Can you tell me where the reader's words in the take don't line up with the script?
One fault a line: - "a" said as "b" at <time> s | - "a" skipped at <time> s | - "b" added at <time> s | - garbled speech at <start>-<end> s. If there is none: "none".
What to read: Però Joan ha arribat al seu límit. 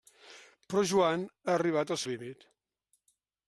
- "seu" skipped at 2.0 s